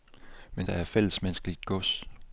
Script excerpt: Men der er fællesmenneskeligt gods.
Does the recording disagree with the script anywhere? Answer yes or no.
no